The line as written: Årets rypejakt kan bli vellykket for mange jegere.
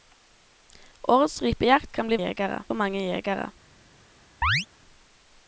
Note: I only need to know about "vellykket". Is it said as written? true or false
false